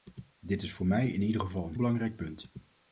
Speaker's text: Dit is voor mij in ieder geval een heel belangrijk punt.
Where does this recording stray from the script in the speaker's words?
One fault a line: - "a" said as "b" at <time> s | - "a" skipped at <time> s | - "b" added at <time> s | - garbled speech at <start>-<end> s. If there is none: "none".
- "heel" skipped at 1.8 s